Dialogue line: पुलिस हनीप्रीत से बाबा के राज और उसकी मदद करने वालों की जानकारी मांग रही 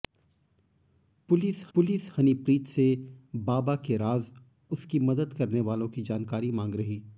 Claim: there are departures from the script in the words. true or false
true